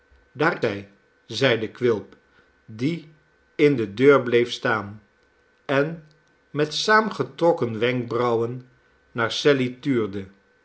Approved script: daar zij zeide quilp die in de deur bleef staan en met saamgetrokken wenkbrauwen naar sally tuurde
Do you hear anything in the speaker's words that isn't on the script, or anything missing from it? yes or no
no